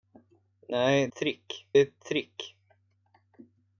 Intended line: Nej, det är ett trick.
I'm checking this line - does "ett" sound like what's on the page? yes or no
yes